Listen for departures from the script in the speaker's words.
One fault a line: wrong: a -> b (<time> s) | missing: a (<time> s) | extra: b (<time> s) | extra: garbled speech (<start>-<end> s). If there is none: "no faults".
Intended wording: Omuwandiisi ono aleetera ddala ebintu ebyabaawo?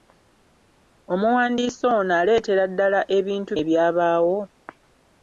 no faults